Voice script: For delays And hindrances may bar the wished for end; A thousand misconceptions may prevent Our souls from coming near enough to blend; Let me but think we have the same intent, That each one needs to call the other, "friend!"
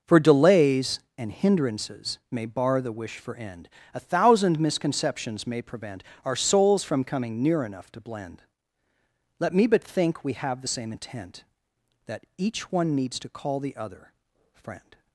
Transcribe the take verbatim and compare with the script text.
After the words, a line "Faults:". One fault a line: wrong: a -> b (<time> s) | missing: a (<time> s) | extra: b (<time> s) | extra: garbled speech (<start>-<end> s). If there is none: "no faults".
For delays And hindrances may bar the wish for end; A thousand misconceptions may prevent Our souls from coming near enough to blend; Let me but think we have the same intent, That each one needs to call the other, "friend!"
Faults:
wrong: wished -> wish (2.9 s)